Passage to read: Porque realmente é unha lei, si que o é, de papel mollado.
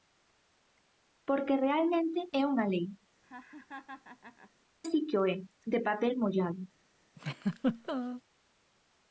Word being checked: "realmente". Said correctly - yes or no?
yes